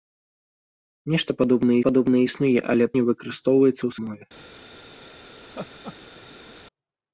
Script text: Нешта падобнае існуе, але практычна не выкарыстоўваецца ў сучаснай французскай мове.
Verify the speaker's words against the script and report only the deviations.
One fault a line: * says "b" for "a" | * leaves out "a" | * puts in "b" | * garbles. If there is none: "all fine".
* puts in "падобнае"
* leaves out "практычна"
* leaves out "сучаснай французскай"